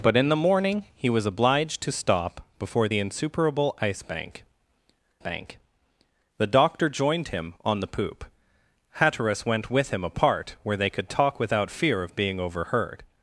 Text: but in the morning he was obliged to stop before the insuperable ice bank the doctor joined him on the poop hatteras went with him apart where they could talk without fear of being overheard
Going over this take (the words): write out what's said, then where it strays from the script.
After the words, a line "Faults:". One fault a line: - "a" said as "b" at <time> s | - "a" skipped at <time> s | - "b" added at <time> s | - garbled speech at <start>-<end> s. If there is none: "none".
but in the morning he was obliged to stop before the insuperable ice bank bank the doctor joined him on the poop hatteras went with him apart where they could talk without fear of being overheard
Faults:
- "bank" added at 5.2 s